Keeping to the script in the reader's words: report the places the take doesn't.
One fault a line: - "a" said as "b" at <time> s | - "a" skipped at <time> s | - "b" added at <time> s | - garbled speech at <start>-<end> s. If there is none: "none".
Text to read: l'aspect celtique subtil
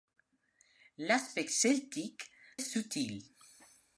none